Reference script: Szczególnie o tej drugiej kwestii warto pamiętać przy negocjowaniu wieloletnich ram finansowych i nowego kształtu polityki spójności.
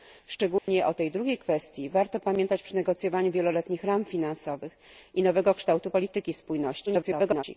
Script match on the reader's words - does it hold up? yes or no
no